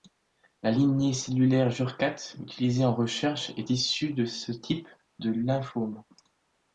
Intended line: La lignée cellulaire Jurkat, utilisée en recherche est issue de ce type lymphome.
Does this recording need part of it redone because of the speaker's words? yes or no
yes